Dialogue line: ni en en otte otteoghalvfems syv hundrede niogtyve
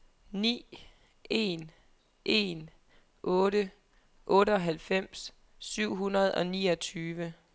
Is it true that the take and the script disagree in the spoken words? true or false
true